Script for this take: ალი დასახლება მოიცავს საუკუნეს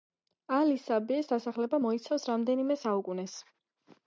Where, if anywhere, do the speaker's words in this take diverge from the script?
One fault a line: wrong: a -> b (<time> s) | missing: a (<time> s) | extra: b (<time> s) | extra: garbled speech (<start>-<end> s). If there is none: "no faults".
extra: საბიეს (0.8 s)
extra: რამდენიმე (2.3 s)